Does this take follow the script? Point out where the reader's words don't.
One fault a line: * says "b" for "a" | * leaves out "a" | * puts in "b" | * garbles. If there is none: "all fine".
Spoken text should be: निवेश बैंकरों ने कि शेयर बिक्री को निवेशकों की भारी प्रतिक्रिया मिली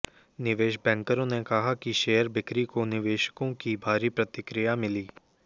* puts in "कहा"